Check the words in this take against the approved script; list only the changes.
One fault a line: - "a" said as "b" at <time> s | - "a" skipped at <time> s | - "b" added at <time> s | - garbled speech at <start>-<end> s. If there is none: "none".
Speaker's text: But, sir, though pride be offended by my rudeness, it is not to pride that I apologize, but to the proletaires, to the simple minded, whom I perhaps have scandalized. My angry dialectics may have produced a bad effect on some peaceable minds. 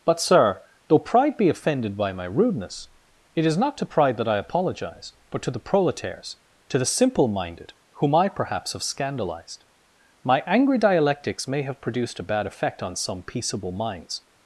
none